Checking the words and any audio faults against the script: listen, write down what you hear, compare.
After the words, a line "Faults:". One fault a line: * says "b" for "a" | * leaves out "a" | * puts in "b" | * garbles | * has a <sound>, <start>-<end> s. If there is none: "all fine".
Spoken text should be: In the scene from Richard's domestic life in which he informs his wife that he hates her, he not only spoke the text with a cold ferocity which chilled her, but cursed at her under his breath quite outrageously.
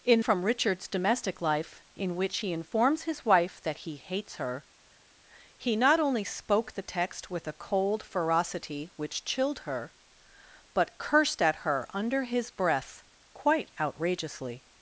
In from Richard's domestic life in which he informs his wife that he hates her, he not only spoke the text with a cold ferocity which chilled her, but cursed at her under his breath quite outrageously.
Faults:
* leaves out "the scene"